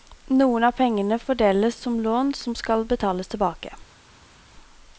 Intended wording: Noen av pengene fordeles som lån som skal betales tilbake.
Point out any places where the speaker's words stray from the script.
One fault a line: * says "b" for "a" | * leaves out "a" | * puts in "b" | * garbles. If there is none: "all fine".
all fine